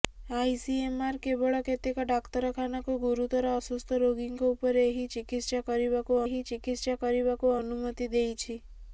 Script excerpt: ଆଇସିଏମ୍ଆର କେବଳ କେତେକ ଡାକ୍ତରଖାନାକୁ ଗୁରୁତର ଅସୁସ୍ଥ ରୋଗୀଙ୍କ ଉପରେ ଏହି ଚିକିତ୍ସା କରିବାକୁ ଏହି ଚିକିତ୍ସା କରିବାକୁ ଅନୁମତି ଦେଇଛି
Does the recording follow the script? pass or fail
pass